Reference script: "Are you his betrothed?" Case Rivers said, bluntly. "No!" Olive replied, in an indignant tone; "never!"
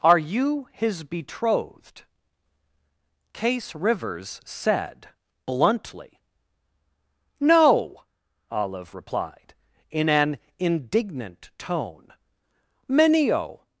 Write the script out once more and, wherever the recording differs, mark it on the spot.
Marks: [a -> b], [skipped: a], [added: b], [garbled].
"Are you his betrothed?" Case Rivers said, bluntly. "No!" Olive replied, in an indignant tone; ["never!" -> menio]